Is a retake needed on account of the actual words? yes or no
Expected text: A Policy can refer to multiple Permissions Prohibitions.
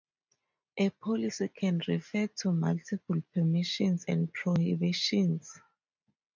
yes